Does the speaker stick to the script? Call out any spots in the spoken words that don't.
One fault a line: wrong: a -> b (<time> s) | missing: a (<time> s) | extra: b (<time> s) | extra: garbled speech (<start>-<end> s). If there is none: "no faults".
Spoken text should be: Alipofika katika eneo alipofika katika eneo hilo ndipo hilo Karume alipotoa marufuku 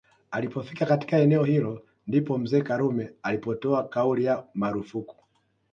missing: alipofika katika eneo (1.4 s)
wrong: hilo -> mzee (2.4 s)
extra: kauli ya (3.9 s)